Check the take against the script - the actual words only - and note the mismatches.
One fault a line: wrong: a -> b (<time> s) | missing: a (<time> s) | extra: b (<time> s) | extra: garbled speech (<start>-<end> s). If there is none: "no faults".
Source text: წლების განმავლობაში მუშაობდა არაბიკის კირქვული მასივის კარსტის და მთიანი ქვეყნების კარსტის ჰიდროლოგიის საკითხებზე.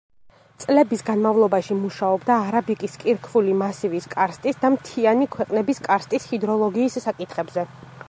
no faults